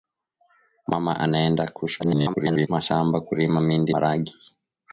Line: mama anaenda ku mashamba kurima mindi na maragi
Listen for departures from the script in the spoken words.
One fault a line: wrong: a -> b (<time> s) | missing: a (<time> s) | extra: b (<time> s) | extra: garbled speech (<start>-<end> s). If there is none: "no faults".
extra: garbled speech (2.0-2.7 s)
missing: na (3.9 s)